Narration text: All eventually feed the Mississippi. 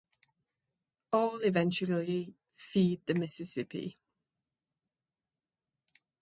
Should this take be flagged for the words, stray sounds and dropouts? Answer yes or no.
no